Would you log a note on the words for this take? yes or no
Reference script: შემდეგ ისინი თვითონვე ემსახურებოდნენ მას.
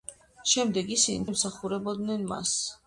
yes